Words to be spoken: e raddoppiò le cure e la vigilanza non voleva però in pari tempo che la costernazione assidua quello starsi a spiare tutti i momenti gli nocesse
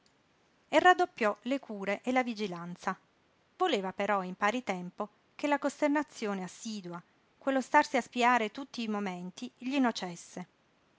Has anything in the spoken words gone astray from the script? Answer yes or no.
yes